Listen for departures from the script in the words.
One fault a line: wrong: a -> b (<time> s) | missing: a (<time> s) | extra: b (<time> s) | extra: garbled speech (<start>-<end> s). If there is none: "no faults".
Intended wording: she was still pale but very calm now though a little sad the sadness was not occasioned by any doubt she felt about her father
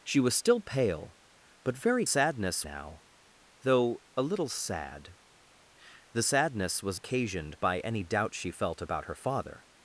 wrong: calm -> sadness (2.1 s)
missing: not (7.0 s)